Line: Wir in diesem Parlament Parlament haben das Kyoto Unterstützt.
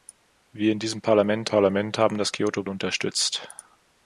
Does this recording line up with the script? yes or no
yes